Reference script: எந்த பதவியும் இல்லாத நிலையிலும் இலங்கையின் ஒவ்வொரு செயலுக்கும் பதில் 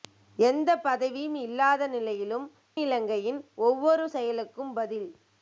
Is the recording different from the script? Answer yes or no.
no